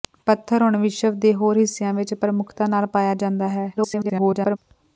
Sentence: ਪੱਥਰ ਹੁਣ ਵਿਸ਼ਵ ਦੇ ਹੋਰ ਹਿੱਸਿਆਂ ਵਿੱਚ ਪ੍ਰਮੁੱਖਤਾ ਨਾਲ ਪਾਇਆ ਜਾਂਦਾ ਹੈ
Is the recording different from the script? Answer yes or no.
yes